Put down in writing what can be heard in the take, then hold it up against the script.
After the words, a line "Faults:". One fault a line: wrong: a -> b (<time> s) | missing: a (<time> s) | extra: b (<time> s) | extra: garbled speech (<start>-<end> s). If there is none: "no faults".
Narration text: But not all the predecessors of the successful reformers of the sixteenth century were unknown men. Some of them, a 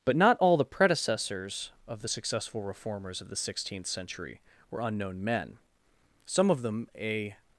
But not all the predecessors of the successful reformers of the sixteenth century were unknown men. Some of them, a
Faults:
no faults